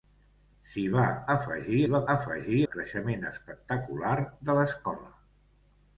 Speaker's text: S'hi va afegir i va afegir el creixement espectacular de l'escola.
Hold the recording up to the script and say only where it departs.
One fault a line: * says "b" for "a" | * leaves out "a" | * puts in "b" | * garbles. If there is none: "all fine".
all fine